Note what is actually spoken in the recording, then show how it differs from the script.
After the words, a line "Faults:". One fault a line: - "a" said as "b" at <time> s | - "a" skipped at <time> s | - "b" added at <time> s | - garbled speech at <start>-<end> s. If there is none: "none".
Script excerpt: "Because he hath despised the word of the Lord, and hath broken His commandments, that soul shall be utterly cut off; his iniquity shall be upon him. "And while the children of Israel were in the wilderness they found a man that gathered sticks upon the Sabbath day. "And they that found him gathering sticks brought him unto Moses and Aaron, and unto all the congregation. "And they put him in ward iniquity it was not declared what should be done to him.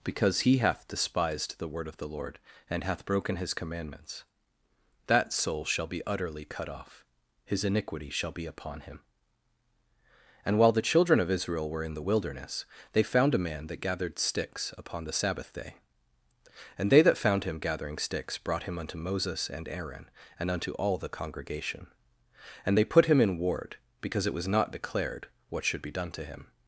"Because he hath despised the word of the Lord, and hath broken His commandments, that soul shall be utterly cut off; his iniquity shall be upon him. "And while the children of Israel were in the wilderness they found a man that gathered sticks upon the Sabbath day. "And they that found him gathering sticks brought him unto Moses and Aaron, and unto all the congregation. "And they put him in ward because it was not declared what should be done to him.
Faults:
- "iniquity" said as "because" at 24.0 s